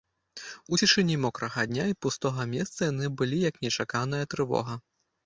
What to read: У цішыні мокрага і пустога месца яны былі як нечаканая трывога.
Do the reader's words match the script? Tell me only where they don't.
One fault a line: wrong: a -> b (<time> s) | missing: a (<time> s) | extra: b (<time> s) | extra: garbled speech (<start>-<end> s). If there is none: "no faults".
extra: дня (1.7 s)